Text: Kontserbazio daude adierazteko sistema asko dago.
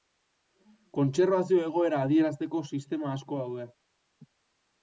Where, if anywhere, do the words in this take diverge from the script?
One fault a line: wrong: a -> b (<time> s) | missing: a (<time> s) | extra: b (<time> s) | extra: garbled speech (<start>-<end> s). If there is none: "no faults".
wrong: daude -> egoera (1.6 s)
wrong: dago -> daude (3.4 s)